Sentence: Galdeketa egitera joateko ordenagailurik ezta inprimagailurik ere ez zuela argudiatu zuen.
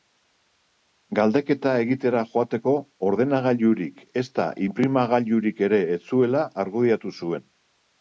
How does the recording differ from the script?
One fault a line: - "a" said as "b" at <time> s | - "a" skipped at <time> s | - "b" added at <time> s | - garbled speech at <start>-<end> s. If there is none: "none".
none